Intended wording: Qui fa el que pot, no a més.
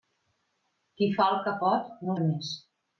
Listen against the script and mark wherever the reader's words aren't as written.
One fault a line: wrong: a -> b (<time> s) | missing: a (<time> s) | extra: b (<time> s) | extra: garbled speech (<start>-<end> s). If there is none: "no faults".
no faults